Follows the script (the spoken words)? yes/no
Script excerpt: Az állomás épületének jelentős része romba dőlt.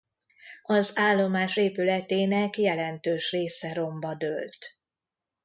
yes